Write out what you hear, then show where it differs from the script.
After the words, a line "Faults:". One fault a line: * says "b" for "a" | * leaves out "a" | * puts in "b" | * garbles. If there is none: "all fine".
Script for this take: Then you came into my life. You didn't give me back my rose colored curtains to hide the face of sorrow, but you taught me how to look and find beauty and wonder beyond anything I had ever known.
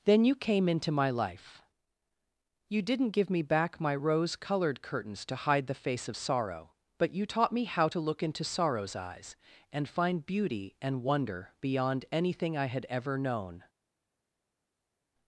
Then you came into my life. You didn't give me back my rose colored curtains to hide the face of sorrow, but you taught me how to look into sorrow's eyes, and find beauty and wonder beyond anything I had ever known.
Faults:
* puts in "into sorrow's eyes"